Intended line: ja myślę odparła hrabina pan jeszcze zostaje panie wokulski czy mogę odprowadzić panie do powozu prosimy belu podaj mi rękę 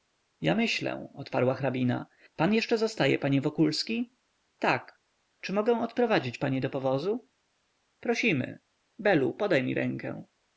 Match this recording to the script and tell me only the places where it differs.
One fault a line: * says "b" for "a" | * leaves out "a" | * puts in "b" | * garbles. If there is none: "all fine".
* puts in "tak"